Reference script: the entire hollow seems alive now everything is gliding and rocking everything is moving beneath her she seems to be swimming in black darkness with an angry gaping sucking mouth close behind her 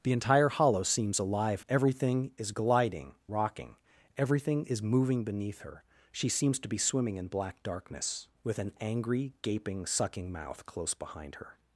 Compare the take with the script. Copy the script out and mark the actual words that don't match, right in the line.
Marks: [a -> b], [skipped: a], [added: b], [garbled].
the entire hollow seems alive [skipped: now] everything is gliding [skipped: and] rocking everything is moving beneath her she seems to be swimming in black darkness with an angry gaping sucking mouth close behind her